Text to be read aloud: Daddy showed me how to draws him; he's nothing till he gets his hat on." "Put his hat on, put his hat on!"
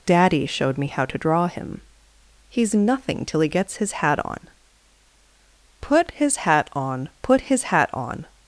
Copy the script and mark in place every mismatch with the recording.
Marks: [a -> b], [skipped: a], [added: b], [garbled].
Daddy showed me how to [draws -> draw] him; he's nothing till he gets his hat on." "Put his hat on, put his hat on!"